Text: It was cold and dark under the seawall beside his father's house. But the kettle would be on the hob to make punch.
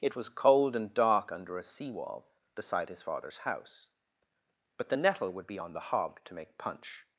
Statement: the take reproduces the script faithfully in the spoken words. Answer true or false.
false